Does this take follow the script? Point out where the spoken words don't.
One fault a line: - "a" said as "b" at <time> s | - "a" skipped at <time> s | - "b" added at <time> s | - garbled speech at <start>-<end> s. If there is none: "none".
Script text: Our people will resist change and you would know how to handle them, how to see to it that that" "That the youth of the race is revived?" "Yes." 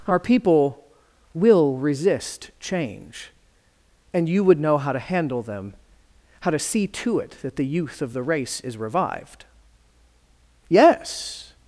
- "that That" skipped at 7.6 s